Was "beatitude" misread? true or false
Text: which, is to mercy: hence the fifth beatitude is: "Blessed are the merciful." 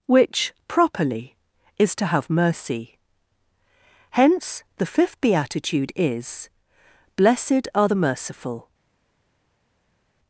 false